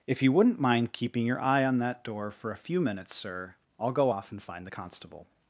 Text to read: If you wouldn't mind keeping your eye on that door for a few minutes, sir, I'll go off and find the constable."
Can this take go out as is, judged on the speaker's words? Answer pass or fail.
pass